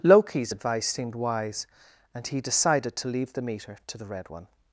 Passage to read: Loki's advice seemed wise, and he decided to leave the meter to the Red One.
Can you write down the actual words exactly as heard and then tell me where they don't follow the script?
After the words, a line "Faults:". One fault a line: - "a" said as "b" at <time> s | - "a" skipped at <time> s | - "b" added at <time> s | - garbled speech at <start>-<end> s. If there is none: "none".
Loki's advice seemed wise, and he decided to leave the meter to the Red One.
Faults:
none